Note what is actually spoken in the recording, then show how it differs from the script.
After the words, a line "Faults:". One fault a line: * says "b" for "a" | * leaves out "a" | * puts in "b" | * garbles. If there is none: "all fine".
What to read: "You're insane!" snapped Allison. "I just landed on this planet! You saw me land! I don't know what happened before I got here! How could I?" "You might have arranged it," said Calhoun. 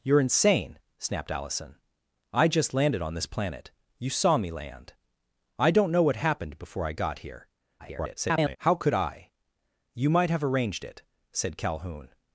"You're insane!" snapped Allison. "I just landed on this planet! You saw me land! I don't know what happened before I got here! [garbled] How could I?" "You might have arranged it," said Calhoun.
Faults:
* garbles